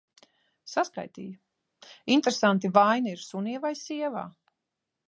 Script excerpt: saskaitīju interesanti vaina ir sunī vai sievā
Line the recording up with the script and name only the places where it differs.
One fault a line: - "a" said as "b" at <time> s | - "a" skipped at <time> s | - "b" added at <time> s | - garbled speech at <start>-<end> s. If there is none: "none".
none